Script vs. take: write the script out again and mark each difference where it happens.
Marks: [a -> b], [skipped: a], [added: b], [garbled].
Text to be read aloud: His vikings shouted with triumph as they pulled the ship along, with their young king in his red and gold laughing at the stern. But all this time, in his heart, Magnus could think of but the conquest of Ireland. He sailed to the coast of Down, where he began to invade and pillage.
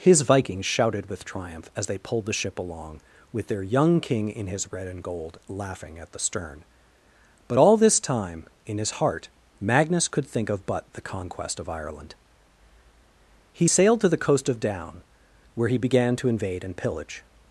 His vikings shouted with triumph as they pulled the ship along, with their young king in his red and gold laughing at the stern. But all this time, in his heart, Magnus could think of but the conquest of Ireland. He sailed to the coast of Down, where he began to invade and pillage.